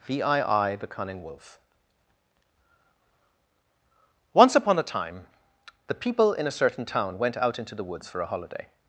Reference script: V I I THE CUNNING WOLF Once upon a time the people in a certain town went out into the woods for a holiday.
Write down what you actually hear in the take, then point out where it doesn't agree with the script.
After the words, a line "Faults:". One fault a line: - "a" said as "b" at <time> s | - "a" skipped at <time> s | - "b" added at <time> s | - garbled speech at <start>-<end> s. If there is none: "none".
V I I THE CUNNING WOLF Once upon a time the people in a certain town went out into the woods for a holiday.
Faults:
none